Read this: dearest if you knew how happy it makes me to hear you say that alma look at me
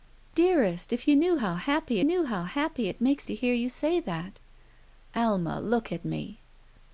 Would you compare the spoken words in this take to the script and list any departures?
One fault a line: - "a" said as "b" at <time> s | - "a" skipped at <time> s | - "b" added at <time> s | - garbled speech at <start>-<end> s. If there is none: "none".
- "knew how happy" added at 2.0 s
- "me" skipped at 3.3 s